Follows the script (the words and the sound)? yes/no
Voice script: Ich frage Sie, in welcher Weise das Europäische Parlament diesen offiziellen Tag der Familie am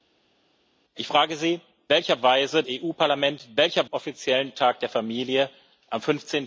no